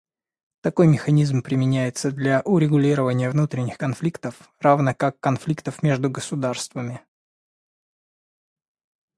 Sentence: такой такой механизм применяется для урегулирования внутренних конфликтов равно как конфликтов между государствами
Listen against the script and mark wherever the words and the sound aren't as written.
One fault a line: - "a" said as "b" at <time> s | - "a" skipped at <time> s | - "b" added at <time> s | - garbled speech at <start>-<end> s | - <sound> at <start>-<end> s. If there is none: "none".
- "такой" skipped at 0.9 s